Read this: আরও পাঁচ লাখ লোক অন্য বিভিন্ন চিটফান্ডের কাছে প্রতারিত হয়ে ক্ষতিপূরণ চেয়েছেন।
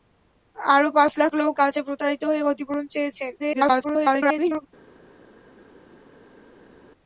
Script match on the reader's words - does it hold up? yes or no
no